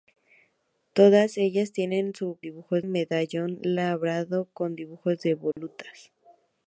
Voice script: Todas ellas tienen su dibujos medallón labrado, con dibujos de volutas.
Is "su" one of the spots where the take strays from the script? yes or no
no